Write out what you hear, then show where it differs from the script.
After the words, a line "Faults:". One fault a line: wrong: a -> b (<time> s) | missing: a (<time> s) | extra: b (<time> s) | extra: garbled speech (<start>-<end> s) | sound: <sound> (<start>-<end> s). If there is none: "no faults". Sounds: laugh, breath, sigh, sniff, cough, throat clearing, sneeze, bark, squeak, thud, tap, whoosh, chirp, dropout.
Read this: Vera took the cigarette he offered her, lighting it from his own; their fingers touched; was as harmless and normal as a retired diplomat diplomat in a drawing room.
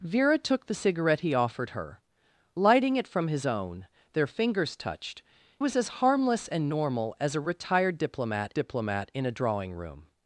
Vera took the cigarette he offered her, lighting it from his own; their fingers touched; was as harmless and normal as a retired diplomat diplomat in a drawing room.
Faults:
no faults